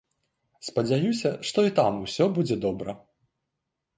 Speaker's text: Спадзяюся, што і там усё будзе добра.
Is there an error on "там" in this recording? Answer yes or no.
no